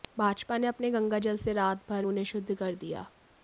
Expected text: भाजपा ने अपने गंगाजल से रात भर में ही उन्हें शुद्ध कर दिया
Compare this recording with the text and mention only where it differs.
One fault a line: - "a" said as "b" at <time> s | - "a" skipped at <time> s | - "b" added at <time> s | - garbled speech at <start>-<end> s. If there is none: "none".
- "में ही" skipped at 2.0 s